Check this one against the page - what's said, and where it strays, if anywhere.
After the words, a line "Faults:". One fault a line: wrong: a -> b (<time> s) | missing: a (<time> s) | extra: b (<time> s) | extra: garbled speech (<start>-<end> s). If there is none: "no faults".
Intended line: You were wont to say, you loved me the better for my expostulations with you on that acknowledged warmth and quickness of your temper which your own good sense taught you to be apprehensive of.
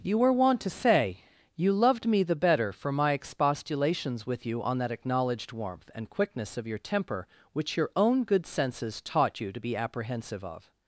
You were wont to say, you loved me the better for my expostulations with you on that acknowledged warmth and quickness of your temper which your own good senses taught you to be apprehensive of.
Faults:
wrong: sense -> senses (8.5 s)